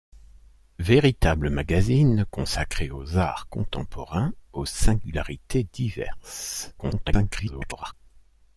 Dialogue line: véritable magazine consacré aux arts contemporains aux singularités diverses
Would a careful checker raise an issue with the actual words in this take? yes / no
yes